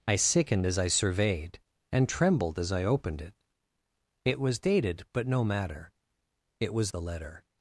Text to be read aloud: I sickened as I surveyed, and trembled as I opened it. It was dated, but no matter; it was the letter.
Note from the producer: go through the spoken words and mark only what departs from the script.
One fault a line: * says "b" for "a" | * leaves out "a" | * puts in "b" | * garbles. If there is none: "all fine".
all fine